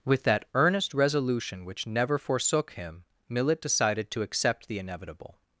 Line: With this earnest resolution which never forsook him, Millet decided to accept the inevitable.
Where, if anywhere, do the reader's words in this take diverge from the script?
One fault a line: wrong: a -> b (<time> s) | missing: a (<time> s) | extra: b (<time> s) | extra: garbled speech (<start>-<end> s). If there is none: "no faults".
wrong: this -> that (0.2 s)